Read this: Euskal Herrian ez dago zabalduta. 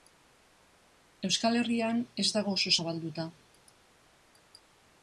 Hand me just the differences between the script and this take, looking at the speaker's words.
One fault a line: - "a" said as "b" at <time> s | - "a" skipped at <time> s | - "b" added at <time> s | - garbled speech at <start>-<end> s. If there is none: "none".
- "oso" added at 2.6 s